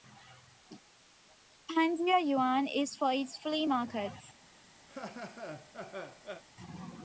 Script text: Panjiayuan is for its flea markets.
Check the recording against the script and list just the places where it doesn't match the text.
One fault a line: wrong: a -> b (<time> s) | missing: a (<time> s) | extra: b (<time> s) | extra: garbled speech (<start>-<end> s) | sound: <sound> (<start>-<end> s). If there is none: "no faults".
sound: laugh (4.9-6.4 s)